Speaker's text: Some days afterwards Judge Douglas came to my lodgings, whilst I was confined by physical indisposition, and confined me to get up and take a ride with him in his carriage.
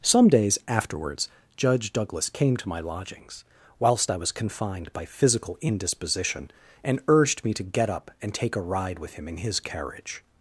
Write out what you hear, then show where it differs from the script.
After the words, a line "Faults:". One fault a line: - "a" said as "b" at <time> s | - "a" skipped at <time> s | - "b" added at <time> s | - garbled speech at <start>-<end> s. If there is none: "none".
Some days afterwards Judge Douglas came to my lodgings, whilst I was confined by physical indisposition, and urged me to get up and take a ride with him in his carriage.
Faults:
- "confined" said as "urged" at 7.1 s